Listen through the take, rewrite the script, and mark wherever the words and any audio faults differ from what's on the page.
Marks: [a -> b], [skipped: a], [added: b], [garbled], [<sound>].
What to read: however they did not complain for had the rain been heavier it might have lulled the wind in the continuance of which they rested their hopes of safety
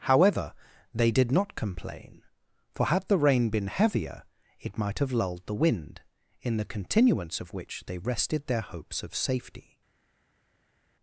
however they did not complain for had the rain been heavier it might have lulled the wind in the continuance of which they rested their hopes of safety